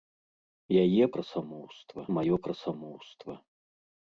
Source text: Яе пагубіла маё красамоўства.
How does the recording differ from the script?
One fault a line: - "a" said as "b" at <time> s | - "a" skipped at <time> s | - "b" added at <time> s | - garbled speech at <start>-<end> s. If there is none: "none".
- "пагубіла" said as "красамоўства" at 1.2 s